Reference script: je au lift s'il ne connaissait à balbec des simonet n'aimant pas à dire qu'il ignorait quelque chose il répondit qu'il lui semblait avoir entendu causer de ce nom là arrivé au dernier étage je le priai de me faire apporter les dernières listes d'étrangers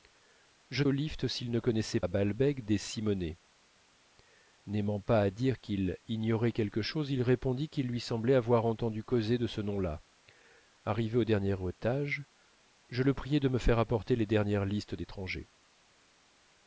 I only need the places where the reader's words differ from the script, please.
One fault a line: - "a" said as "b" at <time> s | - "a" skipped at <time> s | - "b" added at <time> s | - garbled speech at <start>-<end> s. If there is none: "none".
none